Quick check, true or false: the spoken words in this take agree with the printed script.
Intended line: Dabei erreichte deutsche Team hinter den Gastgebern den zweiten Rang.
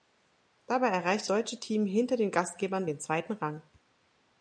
true